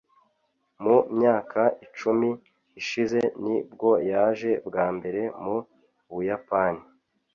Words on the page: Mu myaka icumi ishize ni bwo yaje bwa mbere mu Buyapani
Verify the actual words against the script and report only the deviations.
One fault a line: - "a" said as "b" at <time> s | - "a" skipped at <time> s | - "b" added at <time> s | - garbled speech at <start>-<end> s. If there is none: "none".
none